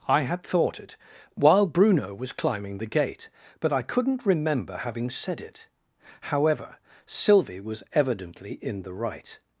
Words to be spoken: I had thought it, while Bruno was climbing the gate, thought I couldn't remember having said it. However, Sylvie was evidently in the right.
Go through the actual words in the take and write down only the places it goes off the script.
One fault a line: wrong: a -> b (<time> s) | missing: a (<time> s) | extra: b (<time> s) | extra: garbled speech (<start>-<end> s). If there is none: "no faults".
wrong: thought -> but (3.6 s)